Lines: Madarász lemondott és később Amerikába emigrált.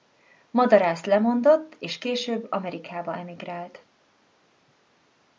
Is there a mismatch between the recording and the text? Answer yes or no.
no